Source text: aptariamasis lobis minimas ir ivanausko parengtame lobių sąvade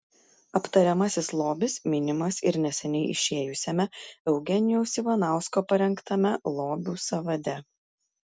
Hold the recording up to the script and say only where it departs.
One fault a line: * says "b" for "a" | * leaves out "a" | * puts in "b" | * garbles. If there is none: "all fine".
* puts in "neseniai išėjusiame eugenijaus"